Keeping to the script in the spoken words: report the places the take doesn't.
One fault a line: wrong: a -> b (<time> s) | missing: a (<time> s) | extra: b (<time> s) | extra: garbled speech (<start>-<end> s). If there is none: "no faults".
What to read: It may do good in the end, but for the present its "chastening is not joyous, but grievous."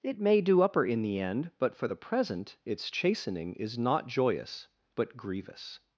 wrong: good -> upper (0.6 s)